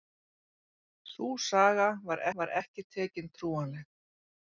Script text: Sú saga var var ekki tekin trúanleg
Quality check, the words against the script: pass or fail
pass